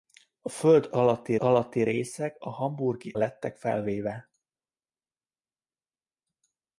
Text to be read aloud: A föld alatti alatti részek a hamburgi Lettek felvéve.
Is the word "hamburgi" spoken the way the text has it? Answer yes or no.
yes